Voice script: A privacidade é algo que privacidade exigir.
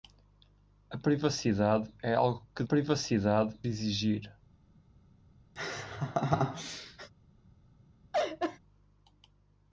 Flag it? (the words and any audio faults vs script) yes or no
yes